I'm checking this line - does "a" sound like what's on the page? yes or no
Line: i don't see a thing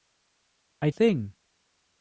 no